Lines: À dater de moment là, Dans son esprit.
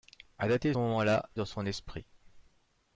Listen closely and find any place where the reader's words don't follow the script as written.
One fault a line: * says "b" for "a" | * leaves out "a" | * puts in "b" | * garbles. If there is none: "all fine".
all fine